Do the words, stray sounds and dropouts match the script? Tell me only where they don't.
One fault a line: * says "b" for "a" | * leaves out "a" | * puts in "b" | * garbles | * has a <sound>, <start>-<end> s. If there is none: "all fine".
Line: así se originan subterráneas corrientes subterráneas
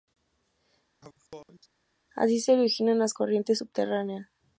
* has a sneeze, 1.0-1.7 s
* says "las" for "subterráneas"